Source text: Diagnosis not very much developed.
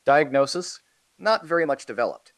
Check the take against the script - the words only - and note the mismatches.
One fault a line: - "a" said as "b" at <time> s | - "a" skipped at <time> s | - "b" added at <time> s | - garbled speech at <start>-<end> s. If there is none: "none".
none